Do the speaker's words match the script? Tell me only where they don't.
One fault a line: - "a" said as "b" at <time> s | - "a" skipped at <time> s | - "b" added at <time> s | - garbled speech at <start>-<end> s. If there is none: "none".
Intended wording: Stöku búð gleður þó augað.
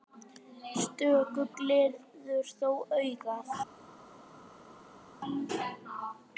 - "búð" skipped at 1.4 s